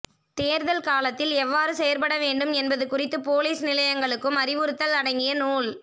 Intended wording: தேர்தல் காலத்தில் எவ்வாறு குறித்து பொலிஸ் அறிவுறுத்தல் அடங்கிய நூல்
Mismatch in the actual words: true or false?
true